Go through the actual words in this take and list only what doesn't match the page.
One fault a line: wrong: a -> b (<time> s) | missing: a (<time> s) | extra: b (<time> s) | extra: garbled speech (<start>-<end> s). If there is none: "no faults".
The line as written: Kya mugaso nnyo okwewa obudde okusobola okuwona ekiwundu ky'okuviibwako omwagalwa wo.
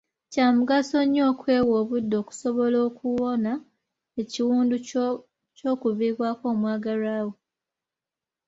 no faults